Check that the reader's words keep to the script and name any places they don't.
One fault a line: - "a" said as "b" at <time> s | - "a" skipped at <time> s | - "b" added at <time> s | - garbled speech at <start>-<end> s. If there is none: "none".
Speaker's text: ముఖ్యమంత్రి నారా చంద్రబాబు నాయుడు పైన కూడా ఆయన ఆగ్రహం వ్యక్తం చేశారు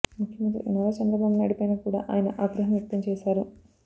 none